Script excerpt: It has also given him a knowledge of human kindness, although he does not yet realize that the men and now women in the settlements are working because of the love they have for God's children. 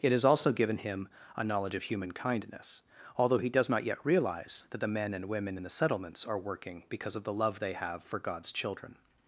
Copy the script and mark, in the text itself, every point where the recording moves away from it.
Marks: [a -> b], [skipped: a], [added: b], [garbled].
It has also given him a knowledge of human kindness, although he does not yet realize that the men and [skipped: now] women in the settlements are working because of the love they have for God's children.